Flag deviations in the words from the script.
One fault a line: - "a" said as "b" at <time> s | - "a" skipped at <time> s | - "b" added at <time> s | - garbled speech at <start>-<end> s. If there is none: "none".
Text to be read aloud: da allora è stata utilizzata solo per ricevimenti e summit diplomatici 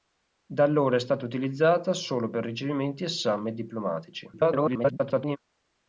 - garbled speech at 4.3-5.4 s